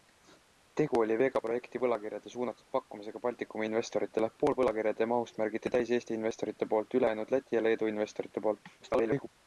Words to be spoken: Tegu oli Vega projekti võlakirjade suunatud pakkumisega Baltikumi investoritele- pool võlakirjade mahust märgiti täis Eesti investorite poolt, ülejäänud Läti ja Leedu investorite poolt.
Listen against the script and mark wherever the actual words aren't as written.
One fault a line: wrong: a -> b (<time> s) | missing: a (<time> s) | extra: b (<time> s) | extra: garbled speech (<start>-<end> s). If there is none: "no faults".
extra: garbled speech (8.8-9.3 s)